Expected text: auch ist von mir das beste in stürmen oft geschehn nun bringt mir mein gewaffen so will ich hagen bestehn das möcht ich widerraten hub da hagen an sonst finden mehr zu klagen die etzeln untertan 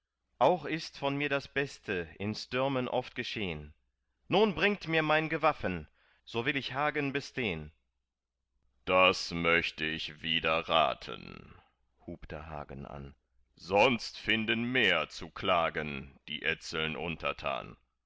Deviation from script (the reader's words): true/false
false